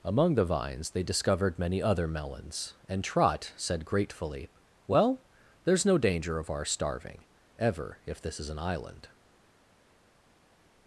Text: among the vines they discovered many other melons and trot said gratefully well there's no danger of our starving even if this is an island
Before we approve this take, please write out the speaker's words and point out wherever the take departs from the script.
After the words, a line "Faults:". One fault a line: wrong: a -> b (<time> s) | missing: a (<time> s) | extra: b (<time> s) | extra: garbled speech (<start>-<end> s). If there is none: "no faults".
among the vines they discovered many other melons and trot said gratefully well there's no danger of our starving ever if this is an island
Faults:
wrong: even -> ever (7.6 s)